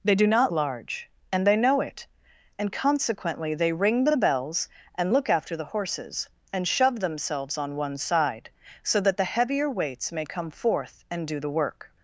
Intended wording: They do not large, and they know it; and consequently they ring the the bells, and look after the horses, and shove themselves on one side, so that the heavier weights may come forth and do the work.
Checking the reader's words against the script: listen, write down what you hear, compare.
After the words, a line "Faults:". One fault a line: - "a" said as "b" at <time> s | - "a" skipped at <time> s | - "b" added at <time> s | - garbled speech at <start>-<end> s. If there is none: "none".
They do not large, and they know it; and consequently they ring the the bells, and look after the horses, and shove themselves on one side, so that the heavier weights may come forth and do the work.
Faults:
none